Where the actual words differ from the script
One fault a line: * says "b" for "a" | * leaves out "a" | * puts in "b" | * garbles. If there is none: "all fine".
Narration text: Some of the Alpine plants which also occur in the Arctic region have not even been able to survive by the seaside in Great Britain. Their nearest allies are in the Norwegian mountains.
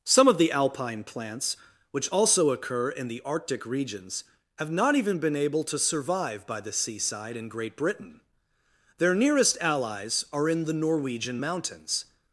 * says "regions" for "region"